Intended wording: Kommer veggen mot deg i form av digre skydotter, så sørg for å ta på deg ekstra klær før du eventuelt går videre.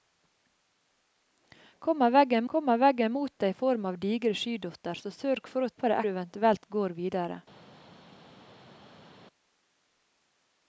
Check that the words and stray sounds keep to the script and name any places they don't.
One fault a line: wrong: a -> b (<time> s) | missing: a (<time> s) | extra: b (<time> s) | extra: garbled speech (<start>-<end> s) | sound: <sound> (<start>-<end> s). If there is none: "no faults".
extra: kommer veggen (2.5 s)
missing: ta (5.7 s)
missing: ekstra klær før (6.0 s)